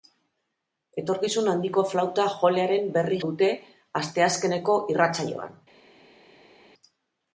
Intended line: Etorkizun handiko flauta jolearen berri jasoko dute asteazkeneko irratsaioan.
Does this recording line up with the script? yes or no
no